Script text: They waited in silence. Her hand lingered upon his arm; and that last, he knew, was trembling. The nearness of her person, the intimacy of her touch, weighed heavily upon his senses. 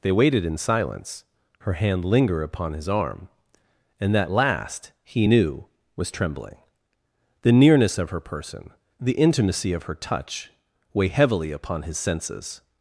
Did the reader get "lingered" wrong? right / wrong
wrong